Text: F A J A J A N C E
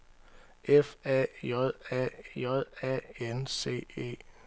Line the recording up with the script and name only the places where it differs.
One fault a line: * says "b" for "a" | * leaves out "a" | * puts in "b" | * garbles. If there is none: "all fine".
all fine